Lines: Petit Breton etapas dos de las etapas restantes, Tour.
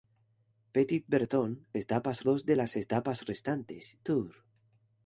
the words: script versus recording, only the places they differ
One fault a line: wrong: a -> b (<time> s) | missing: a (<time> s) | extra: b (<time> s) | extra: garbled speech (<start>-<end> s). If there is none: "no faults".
no faults